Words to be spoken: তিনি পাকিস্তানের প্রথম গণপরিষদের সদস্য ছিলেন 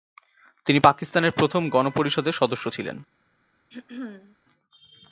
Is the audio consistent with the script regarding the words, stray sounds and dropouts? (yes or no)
no